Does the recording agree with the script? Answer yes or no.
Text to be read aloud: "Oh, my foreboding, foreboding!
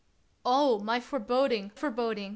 yes